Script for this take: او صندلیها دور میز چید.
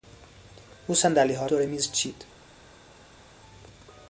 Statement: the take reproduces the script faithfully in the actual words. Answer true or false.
true